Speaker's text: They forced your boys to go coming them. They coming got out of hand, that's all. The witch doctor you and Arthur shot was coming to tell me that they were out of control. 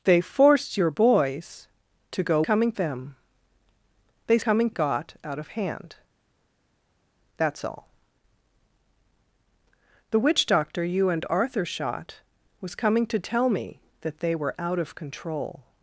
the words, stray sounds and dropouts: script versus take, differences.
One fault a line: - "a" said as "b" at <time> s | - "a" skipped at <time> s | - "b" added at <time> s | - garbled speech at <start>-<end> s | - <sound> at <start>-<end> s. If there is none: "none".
none